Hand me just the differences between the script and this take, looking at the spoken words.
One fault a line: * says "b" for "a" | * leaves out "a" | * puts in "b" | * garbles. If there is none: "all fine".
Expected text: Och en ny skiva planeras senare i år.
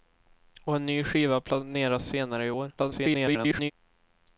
* garbles